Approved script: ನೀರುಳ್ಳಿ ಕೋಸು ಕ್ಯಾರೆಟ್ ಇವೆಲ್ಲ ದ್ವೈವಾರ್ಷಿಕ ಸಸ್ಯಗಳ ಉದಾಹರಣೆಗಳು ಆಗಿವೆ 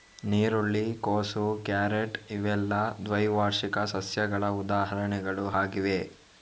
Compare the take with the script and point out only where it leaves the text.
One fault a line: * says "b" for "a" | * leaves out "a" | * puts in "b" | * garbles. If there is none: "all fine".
all fine